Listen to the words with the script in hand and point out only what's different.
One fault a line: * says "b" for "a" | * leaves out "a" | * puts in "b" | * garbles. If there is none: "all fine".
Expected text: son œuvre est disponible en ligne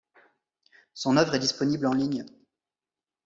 all fine